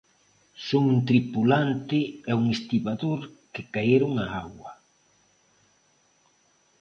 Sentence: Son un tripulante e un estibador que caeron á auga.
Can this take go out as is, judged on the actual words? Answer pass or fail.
pass